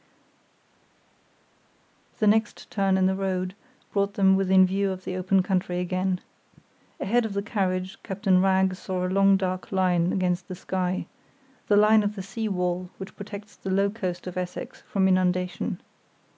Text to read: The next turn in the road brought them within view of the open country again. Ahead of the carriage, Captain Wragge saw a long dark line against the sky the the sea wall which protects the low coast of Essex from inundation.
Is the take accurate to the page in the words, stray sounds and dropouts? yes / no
no